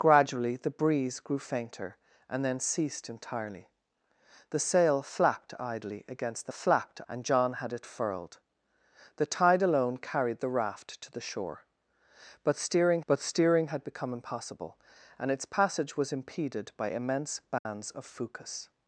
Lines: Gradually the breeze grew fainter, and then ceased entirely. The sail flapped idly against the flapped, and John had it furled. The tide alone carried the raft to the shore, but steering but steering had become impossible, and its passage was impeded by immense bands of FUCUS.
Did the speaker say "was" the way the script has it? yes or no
yes